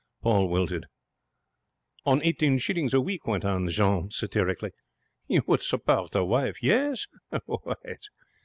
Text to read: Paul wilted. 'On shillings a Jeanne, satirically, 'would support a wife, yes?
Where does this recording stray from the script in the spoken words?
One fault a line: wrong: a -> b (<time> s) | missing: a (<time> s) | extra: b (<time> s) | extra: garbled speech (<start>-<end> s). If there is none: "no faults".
extra: eighteen (2.2 s)
extra: week went on (3.0 s)
extra: you (5.3 s)